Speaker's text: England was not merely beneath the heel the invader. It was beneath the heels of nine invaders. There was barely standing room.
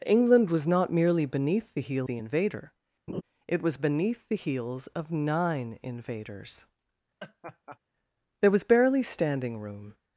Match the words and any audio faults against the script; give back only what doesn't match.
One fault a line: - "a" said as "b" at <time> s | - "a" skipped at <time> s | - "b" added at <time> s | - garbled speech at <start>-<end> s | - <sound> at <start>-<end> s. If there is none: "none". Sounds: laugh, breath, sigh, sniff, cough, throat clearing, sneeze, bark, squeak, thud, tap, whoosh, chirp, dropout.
- laugh at 3.1-3.2 s
- laugh at 7.2-7.8 s